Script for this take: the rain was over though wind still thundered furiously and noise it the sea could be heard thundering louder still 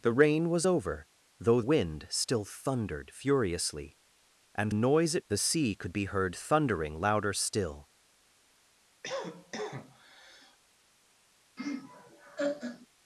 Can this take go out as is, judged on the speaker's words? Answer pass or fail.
pass